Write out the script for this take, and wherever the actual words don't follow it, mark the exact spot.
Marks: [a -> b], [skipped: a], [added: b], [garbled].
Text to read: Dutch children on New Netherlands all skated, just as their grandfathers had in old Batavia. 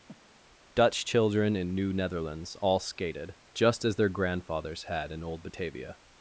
Dutch children [on -> in] New Netherlands all skated, just as their grandfathers had in old Batavia.